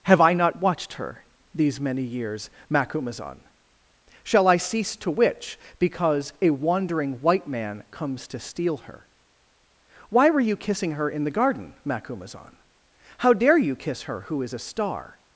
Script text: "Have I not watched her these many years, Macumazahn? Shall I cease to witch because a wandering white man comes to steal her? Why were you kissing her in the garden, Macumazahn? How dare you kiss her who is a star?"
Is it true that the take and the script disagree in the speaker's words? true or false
false